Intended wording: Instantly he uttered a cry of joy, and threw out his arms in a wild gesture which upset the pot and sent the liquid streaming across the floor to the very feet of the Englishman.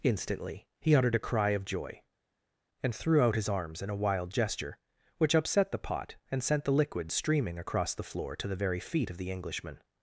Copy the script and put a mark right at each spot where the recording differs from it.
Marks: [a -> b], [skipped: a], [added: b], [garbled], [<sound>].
Instantly he uttered a cry of joy, and threw out his arms in a wild gesture which upset the pot and sent the liquid streaming across the floor to the very feet of the Englishman.